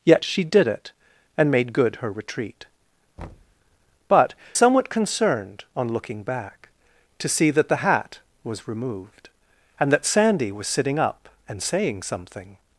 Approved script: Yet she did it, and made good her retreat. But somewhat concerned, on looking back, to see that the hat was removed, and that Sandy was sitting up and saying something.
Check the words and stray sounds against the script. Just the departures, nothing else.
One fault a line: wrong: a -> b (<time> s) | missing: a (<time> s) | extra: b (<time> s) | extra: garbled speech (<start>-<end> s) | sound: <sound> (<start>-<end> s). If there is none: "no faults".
sound: thud (3.2-3.6 s)